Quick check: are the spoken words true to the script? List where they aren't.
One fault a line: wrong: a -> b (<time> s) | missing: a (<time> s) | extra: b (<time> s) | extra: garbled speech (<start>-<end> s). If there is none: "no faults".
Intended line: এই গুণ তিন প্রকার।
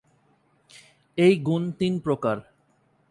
no faults